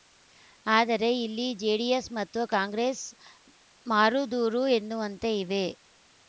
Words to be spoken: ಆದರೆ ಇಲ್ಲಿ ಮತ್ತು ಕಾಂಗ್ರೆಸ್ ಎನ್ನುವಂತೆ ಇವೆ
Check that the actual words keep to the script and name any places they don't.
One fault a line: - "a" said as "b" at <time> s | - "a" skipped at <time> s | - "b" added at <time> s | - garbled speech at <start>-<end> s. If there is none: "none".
- "ಜೆಡಿಎಸ್" added at 1.6 s
- "ಮಾರುದೂರ" added at 3.9 s